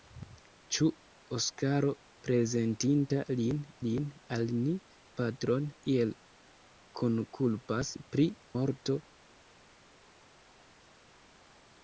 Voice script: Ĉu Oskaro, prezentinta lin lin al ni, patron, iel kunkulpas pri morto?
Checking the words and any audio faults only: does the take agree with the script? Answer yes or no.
yes